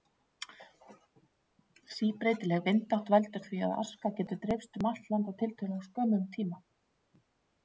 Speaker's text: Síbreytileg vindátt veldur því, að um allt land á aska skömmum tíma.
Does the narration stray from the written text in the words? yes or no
yes